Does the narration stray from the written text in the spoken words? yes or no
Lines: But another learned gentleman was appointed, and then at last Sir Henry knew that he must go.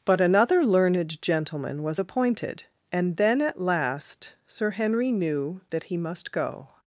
no